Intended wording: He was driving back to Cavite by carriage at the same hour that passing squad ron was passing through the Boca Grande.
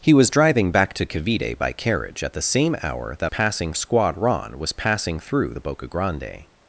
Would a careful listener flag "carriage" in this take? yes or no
no